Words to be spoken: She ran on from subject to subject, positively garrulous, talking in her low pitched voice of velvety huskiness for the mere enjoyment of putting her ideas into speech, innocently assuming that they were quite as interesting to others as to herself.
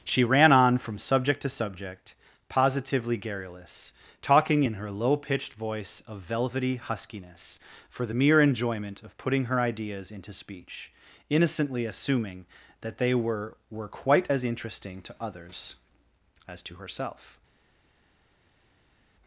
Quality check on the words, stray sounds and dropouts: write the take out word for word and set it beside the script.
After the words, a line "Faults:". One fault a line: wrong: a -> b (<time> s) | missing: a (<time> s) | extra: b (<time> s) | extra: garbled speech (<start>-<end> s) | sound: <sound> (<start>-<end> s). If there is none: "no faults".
She ran on from subject to subject, positively garrulous, talking in her low pitched voice of velvety huskiness for the mere enjoyment of putting her ideas into speech, innocently assuming that they were were quite as interesting to others as to herself.
Faults:
extra: were (13.7 s)